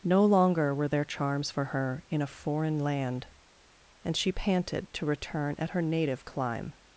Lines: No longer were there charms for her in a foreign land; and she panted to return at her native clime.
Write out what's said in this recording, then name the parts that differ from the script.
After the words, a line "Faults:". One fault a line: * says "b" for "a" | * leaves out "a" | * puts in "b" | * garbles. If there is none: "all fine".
No longer were there charms for her in a foreign land; and she panted to return at her native clime.
Faults:
all fine